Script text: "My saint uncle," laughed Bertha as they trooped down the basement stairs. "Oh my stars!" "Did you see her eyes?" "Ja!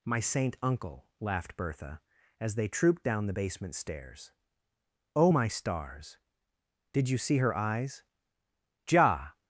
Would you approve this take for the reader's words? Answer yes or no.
yes